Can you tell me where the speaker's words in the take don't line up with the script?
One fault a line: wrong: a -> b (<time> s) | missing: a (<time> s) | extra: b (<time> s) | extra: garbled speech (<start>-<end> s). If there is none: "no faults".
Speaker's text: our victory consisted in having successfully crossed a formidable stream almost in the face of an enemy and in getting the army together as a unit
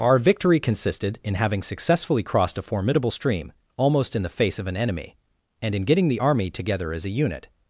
no faults